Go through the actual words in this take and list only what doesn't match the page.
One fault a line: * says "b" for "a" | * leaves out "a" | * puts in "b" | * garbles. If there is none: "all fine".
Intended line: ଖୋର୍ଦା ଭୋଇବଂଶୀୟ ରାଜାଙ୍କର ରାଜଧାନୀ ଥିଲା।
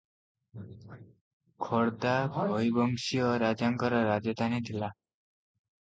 all fine